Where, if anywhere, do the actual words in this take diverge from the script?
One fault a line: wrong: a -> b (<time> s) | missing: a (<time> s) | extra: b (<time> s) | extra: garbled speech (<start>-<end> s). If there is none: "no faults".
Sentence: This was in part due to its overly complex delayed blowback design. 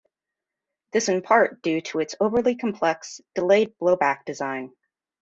missing: was (1.1 s)